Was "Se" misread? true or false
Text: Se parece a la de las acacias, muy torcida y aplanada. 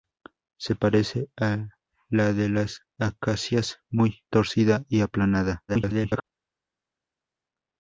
false